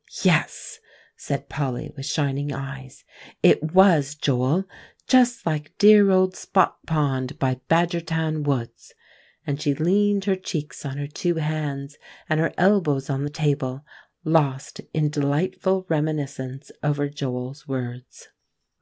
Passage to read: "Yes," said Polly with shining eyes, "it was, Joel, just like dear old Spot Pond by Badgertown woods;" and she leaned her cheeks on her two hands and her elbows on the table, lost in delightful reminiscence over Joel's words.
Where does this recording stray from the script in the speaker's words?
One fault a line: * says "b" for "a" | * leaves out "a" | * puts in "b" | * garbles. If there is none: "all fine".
all fine